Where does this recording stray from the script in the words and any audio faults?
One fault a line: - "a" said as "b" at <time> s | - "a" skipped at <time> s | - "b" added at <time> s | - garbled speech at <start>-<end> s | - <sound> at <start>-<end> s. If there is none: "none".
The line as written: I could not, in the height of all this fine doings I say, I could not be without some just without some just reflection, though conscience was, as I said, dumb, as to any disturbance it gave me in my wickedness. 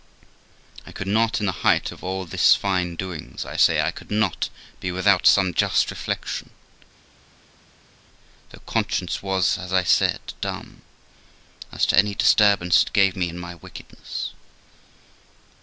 - "without some just" skipped at 5.9 s